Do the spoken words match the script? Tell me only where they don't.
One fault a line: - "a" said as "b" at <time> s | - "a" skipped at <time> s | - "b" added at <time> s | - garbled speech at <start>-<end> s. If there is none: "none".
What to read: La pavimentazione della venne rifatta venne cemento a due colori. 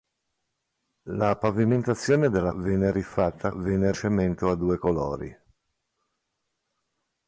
none